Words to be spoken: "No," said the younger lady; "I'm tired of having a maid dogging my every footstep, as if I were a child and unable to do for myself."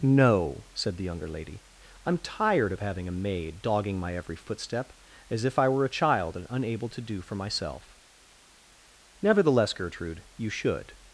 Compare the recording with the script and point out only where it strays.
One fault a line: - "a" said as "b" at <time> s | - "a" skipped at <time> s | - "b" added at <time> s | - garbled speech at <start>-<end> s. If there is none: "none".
- "Nevertheless Gertrude you should" added at 9.2 s